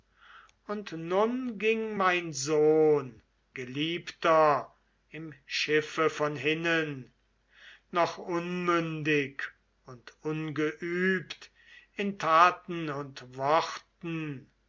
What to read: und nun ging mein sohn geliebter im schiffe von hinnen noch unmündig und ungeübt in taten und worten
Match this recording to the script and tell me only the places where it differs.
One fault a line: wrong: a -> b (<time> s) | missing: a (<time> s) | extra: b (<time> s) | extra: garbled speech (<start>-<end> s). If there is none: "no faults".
no faults